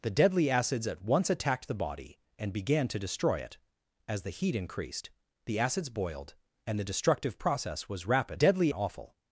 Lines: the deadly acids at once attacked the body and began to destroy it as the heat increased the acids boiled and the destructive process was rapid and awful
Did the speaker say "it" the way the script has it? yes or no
yes